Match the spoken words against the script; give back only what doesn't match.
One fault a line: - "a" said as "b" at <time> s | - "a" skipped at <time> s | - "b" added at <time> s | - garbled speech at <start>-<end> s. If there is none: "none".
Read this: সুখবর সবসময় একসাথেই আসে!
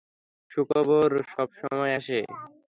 - "একসাথেই" skipped at 1.9 s